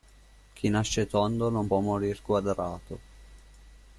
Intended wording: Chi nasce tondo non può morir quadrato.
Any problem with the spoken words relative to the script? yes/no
no